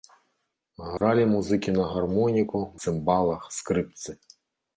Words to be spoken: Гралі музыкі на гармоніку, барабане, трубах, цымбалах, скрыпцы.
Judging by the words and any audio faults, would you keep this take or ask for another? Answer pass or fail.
fail